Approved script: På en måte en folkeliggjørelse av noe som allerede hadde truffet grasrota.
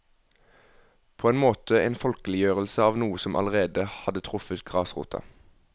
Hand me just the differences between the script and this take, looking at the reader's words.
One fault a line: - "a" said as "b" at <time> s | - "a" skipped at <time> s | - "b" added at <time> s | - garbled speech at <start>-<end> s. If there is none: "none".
none